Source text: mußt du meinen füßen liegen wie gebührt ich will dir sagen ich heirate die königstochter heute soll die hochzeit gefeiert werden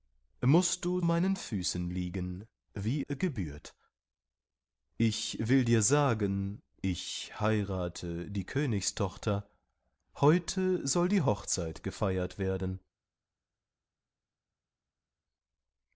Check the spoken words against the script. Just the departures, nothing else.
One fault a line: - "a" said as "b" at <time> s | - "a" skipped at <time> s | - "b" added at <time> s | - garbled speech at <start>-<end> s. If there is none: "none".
none